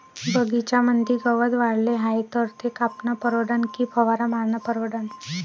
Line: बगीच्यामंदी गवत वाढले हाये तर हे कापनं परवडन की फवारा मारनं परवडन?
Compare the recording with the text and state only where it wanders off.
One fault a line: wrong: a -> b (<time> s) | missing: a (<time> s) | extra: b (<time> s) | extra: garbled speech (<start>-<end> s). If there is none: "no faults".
wrong: हे -> ते (2.6 s)